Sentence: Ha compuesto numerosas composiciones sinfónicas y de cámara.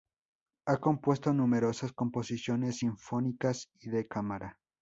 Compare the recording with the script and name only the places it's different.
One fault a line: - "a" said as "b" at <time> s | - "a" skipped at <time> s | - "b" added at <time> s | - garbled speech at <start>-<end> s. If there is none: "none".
none